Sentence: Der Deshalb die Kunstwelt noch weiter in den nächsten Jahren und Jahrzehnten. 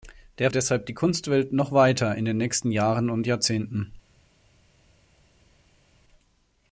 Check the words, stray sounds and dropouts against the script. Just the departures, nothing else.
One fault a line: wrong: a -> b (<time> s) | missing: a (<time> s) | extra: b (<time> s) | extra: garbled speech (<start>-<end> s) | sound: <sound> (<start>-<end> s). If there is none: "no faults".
no faults